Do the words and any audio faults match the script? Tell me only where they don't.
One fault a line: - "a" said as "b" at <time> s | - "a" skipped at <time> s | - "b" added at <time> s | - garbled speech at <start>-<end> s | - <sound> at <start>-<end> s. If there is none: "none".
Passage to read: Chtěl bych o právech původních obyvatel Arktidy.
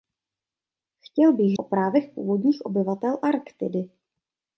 none